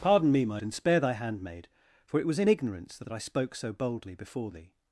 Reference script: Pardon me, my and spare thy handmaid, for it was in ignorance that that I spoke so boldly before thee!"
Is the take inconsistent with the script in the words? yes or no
no